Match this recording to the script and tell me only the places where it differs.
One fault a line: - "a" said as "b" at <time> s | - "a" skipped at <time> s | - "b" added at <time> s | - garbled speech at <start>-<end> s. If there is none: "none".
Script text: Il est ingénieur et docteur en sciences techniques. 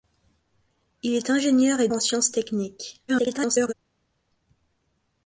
- "docteur" skipped at 1.9 s
- garbled speech at 3.1-3.7 s